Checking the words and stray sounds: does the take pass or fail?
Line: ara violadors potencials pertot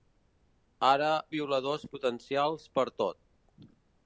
pass